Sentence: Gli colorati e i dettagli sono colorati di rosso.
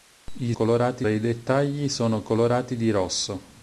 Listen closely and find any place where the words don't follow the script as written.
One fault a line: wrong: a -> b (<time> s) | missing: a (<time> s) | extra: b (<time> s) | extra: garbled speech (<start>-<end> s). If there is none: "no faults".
no faults